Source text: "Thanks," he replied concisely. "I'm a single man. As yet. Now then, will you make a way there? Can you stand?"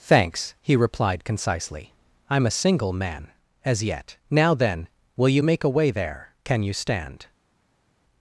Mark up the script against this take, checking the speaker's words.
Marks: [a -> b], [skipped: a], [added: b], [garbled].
"Thanks," he replied concisely. "I'm a single man. As yet. Now then, will you make a way there? Can you stand?"